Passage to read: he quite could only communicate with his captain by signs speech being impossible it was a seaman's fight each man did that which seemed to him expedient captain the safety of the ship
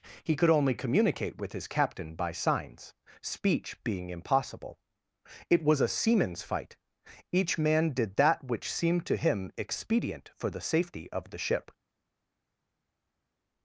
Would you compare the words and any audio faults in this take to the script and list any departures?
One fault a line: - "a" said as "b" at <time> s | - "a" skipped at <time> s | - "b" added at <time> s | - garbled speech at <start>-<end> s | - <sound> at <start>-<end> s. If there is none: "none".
- "quite" skipped at 0.3 s
- "captain" said as "for" at 10.4 s